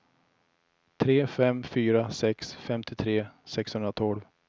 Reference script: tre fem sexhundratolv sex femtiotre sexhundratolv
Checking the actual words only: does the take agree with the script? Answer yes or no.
no